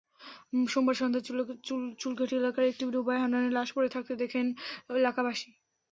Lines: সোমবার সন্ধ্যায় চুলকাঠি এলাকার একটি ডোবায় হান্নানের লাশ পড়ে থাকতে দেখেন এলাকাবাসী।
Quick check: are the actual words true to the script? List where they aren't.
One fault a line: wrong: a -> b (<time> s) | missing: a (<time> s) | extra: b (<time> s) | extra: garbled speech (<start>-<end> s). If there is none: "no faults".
no faults